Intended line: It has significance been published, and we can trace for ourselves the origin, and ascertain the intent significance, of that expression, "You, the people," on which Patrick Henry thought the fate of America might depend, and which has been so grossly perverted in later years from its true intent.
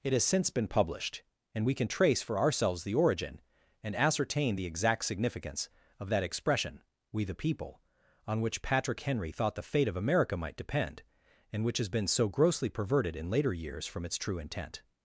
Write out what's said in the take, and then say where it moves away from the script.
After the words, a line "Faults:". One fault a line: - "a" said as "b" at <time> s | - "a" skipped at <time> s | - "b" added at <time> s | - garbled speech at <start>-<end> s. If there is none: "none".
It has since been published, and we can trace for ourselves the origin, and ascertain the exact significance, of that expression, "We, the people," on which Patrick Henry thought the fate of America might depend, and which has been so grossly perverted in later years from its true intent.
Faults:
- "significance" said as "since" at 0.2 s
- "intent" said as "exact" at 4.7 s
- "You" said as "We" at 7.1 s